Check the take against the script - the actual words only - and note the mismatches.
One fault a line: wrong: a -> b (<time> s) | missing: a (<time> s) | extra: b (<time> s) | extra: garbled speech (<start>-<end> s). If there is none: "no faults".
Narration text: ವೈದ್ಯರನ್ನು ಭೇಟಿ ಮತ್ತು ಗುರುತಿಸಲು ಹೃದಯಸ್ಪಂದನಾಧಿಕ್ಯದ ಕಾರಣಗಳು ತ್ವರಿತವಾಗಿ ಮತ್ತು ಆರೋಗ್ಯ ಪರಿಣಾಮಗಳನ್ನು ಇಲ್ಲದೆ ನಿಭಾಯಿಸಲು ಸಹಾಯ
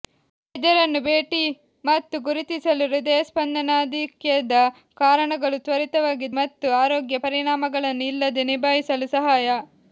no faults